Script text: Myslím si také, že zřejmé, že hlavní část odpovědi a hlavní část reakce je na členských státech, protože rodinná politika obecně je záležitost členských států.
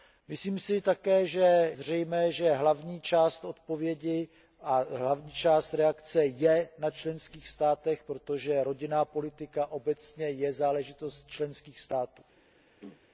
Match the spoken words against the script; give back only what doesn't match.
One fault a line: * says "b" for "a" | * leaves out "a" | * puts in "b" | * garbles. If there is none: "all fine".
all fine